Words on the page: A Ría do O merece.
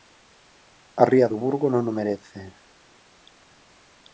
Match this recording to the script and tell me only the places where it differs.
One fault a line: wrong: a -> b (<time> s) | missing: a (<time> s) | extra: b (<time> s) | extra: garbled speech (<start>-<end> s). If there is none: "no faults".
extra: Burgo non (1.4 s)